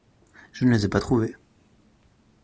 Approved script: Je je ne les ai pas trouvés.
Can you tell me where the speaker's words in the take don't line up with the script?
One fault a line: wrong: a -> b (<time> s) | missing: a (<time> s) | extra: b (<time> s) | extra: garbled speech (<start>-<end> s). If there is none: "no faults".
missing: je (0.7 s)